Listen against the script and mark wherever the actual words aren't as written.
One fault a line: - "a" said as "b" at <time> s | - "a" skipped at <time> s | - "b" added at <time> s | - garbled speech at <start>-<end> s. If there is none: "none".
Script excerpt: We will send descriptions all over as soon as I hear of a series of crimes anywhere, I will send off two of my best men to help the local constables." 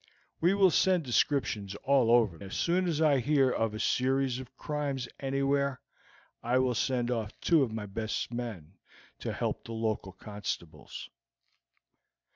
none